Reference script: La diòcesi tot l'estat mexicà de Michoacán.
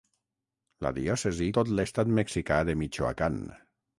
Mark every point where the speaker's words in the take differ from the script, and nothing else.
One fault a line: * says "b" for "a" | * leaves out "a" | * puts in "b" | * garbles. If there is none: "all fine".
all fine